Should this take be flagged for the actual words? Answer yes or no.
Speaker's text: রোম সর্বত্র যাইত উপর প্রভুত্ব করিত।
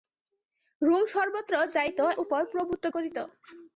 no